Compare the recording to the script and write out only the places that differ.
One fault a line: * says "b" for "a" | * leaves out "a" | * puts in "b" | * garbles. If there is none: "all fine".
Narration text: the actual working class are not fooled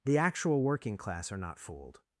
all fine